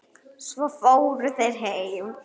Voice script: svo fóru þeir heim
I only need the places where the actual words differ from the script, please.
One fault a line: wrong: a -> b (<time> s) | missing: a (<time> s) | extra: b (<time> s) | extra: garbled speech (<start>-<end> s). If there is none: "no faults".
no faults